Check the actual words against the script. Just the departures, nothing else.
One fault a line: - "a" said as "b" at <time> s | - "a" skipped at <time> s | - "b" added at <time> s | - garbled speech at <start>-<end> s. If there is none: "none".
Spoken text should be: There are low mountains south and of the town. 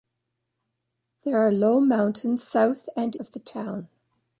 none